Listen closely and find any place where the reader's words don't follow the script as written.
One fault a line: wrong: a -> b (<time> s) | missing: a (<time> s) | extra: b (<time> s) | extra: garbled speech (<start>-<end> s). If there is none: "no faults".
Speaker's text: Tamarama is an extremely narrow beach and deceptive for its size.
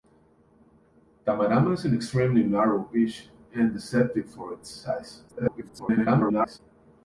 extra: garbled speech (5.3-6.6 s)